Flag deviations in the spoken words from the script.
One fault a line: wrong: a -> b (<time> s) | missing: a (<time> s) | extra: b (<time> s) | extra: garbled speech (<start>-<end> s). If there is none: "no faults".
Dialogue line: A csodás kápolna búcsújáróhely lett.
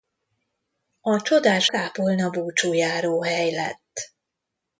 no faults